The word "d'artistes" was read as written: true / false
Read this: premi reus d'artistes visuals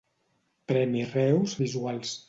false